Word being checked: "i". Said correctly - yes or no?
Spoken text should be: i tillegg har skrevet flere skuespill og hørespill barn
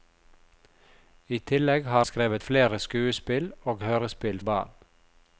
yes